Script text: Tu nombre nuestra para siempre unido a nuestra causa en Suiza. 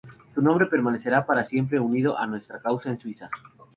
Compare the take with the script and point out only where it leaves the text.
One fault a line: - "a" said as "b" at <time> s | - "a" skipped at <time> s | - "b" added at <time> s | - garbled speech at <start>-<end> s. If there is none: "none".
- "nuestra" said as "permanecerá" at 0.7 s